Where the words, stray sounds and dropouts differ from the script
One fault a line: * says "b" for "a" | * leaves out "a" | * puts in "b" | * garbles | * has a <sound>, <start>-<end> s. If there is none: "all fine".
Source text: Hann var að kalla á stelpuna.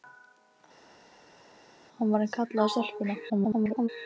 * garbles